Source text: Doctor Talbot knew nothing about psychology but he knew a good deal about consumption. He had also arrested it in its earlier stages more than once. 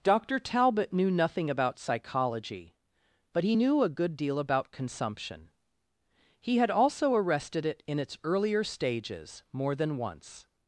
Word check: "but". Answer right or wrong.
right